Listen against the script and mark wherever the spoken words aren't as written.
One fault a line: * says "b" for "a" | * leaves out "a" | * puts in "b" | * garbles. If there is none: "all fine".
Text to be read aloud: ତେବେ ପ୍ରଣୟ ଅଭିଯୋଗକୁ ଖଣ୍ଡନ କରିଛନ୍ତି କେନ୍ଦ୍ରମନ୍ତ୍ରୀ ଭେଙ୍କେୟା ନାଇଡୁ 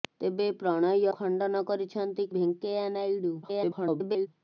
* leaves out "ଅଭିଯୋଗକୁ"
* leaves out "କେନ୍ଦ୍ରମନ୍ତ୍ରୀ"
* garbles